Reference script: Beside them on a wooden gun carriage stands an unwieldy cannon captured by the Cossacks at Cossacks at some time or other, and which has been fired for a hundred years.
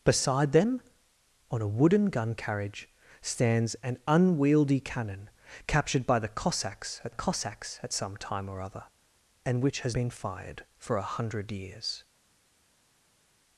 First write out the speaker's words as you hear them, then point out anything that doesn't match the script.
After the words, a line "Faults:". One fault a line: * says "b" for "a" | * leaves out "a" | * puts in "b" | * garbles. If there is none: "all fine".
Beside them on a wooden gun carriage stands an unwieldy cannon captured by the Cossacks at Cossacks at some time or other, and which has been fired for a hundred years.
Faults:
all fine